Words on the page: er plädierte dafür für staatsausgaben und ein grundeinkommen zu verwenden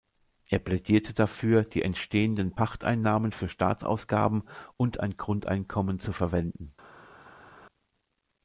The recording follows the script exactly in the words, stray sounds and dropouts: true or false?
false